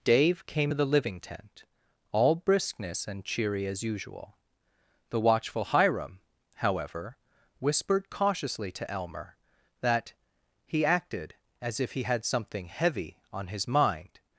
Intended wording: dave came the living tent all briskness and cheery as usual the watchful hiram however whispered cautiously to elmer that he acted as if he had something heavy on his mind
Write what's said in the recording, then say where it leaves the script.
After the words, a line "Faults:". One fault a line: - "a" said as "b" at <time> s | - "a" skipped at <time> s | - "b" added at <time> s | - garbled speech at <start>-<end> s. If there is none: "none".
dave came the living tent all briskness and cheery as usual the watchful hiram however whispered cautiously to elmer that he acted as if he had something heavy on his mind
Faults:
none